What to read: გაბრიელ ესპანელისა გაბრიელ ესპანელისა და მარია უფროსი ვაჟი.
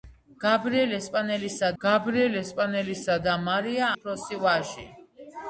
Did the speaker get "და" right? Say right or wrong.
right